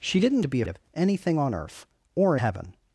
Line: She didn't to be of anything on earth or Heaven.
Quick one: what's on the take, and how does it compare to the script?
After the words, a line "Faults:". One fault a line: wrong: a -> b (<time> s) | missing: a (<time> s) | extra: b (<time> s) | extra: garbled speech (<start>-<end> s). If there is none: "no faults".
She didn't to be of anything on earth or Heaven.
Faults:
no faults